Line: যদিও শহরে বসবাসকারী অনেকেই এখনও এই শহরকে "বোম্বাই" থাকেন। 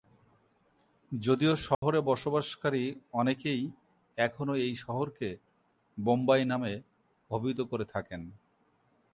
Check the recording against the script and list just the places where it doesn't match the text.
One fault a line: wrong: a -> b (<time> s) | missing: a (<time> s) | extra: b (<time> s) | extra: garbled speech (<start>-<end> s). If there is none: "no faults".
extra: নামে অভিহিত করে (6.5 s)